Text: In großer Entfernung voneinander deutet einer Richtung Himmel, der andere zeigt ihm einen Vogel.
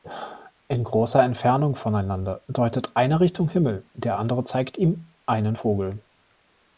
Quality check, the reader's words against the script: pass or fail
pass